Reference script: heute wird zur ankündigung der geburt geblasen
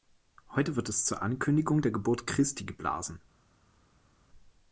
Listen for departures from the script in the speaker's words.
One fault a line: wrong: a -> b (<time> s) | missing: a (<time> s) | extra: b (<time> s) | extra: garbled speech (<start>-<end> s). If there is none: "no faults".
extra: es (0.9 s)
extra: christi (2.2 s)